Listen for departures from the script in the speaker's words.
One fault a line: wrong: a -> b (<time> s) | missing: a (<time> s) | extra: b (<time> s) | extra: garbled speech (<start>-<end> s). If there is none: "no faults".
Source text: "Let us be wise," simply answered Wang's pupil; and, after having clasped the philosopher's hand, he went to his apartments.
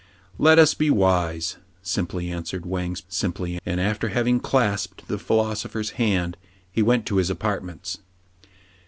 wrong: pupil -> simply (3.1 s)